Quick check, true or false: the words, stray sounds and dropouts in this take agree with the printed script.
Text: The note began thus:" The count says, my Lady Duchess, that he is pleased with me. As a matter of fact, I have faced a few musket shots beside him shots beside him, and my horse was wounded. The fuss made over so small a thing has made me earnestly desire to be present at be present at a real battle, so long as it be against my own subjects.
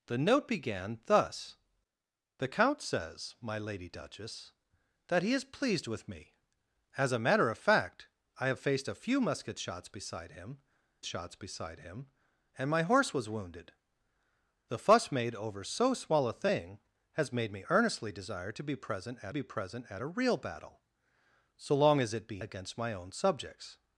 true